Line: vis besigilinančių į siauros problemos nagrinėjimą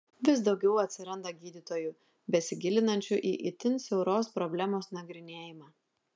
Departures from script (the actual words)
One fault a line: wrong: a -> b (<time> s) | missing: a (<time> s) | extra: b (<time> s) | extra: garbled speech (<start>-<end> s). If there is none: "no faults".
extra: daugiau atsiranda gydytojų (0.5 s)
extra: itin (3.5 s)